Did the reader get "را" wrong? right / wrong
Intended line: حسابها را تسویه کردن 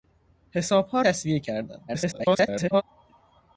wrong